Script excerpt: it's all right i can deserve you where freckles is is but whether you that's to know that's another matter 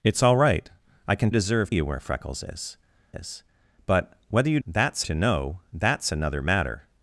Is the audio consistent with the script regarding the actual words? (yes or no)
yes